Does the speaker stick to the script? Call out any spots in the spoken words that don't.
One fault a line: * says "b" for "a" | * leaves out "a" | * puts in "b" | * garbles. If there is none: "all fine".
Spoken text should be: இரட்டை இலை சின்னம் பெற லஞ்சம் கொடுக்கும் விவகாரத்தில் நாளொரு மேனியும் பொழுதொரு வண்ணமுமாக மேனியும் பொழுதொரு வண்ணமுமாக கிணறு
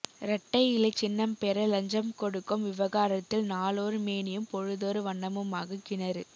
* leaves out "மேனியும் பொழுதொரு வண்ணமுமாக"